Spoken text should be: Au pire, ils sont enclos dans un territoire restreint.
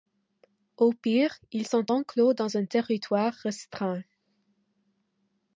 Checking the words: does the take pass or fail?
pass